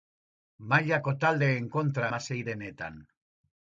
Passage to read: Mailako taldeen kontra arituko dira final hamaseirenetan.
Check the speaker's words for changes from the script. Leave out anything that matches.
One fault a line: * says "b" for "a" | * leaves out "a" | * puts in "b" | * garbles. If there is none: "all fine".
* leaves out "arituko dira final"